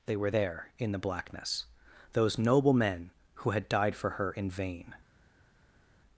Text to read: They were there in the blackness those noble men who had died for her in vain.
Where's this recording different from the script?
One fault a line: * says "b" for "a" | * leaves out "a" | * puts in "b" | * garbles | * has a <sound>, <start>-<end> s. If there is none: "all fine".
all fine